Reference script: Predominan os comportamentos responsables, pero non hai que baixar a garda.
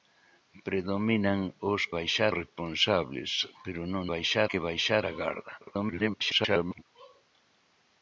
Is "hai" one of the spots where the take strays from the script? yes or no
yes